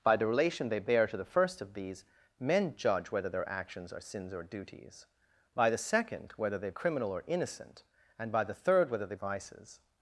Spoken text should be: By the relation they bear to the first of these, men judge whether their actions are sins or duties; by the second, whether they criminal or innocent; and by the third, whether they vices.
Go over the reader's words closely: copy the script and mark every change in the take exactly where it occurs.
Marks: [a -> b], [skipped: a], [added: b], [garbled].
By the relation they bear to the first of these, men judge whether their actions are sins or duties; by the second, whether they criminal or innocent; and by the third, whether they vices.